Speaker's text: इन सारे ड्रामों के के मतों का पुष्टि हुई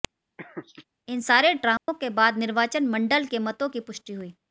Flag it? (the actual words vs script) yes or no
yes